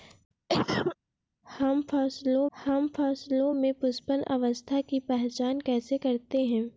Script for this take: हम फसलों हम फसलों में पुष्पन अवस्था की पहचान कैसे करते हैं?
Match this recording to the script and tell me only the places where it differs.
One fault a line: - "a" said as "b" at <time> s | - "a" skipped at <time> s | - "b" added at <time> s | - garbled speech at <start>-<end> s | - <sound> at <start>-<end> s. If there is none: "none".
- cough at 0.5-1.0 s